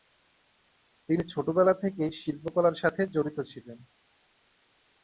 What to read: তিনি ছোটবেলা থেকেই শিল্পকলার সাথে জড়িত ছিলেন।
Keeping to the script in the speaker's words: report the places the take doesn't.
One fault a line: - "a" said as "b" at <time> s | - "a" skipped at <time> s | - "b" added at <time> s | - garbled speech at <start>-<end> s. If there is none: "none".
none